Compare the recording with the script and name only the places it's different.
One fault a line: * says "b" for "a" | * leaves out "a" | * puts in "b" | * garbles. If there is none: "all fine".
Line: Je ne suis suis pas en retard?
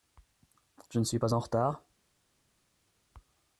* leaves out "suis"